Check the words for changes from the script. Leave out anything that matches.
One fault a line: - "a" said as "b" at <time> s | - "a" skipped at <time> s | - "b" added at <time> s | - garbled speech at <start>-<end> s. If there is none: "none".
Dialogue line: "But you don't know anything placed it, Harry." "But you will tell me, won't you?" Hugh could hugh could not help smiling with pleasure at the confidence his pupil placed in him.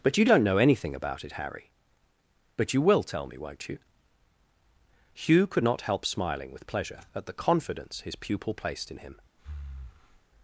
- "placed" said as "about" at 0.9 s
- "hugh could" skipped at 5.6 s